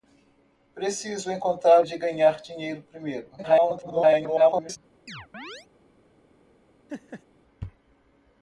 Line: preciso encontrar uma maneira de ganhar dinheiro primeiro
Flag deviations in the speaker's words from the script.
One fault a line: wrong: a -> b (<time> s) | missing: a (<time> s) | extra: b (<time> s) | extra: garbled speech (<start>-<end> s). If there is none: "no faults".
missing: uma maneira (1.8 s)
extra: garbled speech (3.4-4.8 s)